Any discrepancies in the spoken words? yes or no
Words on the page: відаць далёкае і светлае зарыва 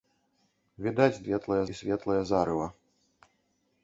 yes